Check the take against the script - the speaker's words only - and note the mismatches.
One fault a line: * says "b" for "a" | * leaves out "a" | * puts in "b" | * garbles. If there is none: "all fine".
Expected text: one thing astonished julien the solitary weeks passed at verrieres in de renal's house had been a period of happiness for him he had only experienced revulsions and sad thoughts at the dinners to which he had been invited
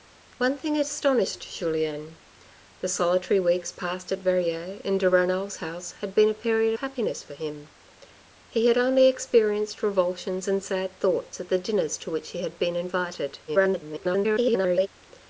* leaves out "of"
* garbles